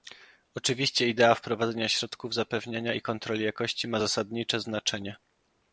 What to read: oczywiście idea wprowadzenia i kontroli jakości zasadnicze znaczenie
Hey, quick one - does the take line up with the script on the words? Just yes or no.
no